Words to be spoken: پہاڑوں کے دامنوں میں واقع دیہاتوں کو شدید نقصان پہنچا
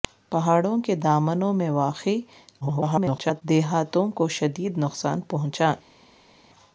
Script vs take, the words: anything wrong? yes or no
yes